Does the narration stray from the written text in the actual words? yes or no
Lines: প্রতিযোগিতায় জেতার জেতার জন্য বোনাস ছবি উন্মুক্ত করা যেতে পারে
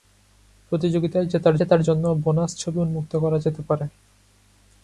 no